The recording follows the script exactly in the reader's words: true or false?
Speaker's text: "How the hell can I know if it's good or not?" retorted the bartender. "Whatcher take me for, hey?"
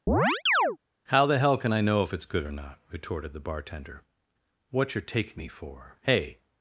true